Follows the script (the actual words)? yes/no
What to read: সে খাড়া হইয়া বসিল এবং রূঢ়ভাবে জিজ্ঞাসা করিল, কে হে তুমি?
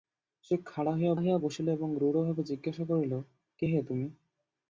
no